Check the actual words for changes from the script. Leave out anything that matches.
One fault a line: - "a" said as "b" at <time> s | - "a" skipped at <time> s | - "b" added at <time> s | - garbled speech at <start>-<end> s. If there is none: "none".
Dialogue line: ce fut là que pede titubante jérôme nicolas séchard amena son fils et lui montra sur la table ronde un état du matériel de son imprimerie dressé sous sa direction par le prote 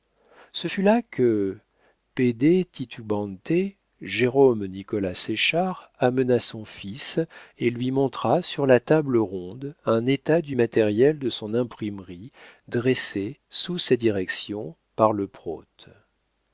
none